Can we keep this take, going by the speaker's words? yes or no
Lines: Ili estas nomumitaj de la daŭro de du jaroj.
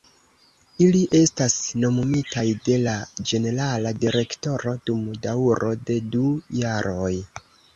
no